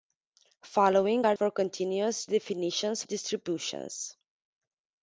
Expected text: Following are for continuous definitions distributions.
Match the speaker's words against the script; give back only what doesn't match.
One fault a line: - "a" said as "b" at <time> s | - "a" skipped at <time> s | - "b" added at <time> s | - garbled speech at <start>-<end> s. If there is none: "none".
none